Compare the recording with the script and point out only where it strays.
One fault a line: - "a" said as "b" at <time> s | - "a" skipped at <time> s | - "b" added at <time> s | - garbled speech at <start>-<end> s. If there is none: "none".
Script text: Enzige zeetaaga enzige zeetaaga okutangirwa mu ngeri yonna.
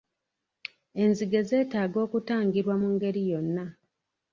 - "enzige zeetaaga" skipped at 2.0 s